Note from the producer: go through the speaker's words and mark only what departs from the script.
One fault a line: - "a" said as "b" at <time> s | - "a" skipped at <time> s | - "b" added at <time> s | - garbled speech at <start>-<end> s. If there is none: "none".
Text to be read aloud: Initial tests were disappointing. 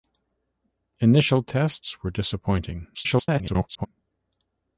- garbled speech at 2.9-3.9 s